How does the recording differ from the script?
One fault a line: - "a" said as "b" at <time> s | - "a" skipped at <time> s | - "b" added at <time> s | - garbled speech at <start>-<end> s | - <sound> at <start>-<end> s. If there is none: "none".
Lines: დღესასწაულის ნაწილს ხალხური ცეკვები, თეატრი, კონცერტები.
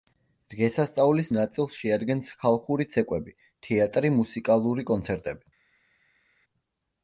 - "შეადგენს" added at 1.8 s
- "მუსიკალური" added at 4.2 s